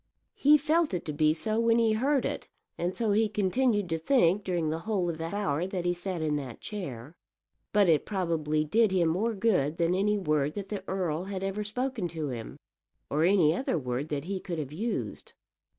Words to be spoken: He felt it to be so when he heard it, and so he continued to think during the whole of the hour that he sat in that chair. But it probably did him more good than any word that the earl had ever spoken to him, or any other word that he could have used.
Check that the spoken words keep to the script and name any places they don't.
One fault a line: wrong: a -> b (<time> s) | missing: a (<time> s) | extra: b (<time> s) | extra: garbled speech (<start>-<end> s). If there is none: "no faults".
no faults